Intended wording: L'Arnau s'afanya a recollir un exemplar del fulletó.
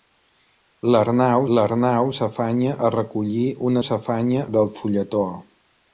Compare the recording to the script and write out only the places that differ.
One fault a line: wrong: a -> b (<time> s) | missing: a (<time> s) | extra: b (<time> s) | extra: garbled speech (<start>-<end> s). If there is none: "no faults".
extra: l'arnau (1.6 s)
wrong: exemplar -> s'afanya (3.9 s)